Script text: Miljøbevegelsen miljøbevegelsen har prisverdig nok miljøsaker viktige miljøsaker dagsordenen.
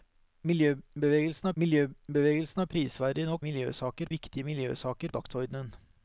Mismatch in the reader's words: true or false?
false